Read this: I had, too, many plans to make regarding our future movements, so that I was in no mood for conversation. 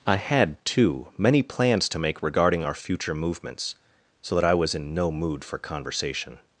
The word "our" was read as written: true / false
true